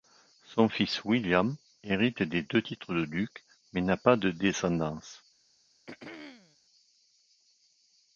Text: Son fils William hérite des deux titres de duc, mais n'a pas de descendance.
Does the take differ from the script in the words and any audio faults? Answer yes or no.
yes